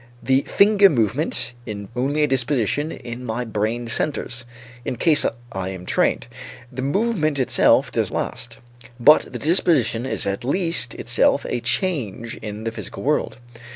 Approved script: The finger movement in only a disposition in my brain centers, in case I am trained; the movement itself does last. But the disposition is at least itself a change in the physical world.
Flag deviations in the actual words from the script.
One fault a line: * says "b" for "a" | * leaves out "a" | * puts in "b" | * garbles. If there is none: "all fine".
all fine